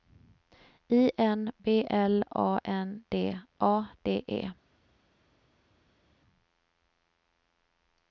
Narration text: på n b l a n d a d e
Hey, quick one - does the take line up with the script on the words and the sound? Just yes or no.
no